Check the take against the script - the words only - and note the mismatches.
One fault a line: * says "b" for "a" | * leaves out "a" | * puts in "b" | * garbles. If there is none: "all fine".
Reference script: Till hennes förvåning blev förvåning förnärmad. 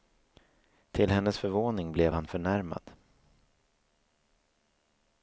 * says "han" for "förvåning"